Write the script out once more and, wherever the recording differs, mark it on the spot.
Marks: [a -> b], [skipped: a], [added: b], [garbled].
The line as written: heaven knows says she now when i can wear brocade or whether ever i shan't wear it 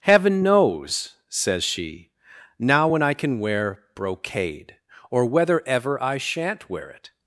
heaven knows says she now when i can wear brocade or whether ever i shan't wear it